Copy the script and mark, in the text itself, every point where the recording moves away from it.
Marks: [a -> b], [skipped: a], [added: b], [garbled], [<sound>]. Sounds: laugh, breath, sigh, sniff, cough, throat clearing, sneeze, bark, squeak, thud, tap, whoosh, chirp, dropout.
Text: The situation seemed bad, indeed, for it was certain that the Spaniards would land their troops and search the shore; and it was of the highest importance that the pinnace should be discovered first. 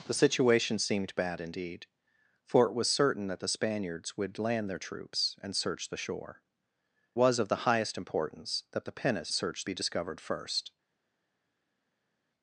The situation seemed bad, indeed, for it was certain that the Spaniards would land their troops and search the shore; [skipped: and it] was of the highest importance that the pinnace [should -> search] be discovered first.